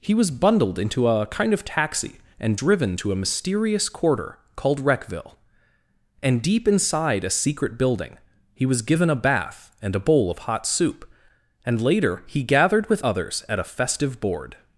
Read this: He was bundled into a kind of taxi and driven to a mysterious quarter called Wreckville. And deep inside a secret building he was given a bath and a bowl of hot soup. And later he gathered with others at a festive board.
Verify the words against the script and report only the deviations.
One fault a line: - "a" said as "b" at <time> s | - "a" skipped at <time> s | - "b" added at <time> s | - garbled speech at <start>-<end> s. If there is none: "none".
none